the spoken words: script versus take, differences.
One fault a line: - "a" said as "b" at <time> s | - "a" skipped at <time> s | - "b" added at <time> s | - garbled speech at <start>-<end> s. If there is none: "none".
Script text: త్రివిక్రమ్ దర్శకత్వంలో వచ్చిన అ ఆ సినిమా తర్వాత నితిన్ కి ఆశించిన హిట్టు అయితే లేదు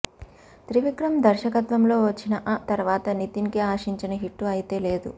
- "ఆ సినిమా" skipped at 2.6 s